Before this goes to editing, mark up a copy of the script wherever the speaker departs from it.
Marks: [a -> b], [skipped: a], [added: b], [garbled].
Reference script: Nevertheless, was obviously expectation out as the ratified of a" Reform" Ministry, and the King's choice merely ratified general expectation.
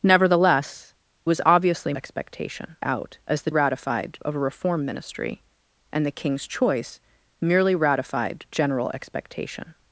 Nevertheless, was obviously expectation out as the ratified of a" Reform" Ministry, and the King's choice merely ratified general expectation.